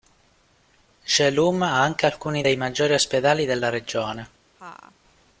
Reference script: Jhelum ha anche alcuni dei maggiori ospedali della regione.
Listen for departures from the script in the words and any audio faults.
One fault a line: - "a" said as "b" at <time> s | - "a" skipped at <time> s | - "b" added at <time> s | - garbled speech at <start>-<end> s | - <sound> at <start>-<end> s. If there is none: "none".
- laugh at 4.6-5.0 s